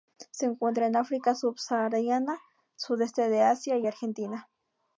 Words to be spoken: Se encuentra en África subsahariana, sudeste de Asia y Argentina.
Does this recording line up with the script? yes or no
yes